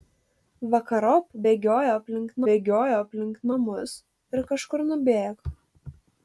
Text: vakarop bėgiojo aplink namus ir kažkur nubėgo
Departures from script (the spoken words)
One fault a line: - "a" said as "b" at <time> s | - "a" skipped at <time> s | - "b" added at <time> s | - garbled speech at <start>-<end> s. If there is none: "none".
- "bėgiojo aplink" added at 2.5 s